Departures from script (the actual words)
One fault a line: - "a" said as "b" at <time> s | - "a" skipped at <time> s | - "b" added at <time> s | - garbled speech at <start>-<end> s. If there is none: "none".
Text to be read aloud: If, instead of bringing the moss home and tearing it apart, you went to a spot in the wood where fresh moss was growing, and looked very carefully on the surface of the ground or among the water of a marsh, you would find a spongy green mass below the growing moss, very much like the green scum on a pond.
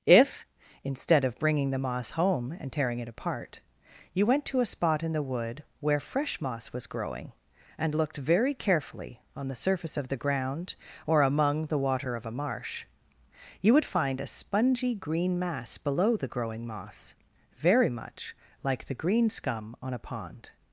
none